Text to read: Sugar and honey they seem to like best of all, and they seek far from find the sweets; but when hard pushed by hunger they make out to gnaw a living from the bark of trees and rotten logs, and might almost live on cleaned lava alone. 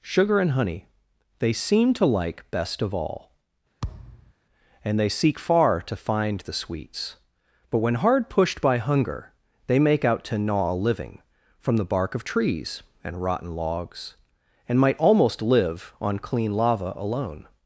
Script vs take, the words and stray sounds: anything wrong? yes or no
yes